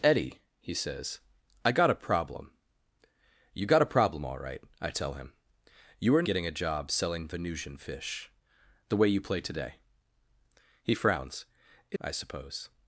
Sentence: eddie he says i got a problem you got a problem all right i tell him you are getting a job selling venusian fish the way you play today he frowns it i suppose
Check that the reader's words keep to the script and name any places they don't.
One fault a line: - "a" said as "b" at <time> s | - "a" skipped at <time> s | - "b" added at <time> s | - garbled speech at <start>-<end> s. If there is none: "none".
none